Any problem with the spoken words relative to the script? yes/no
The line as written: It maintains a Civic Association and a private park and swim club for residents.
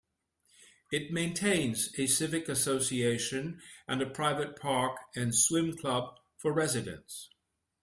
no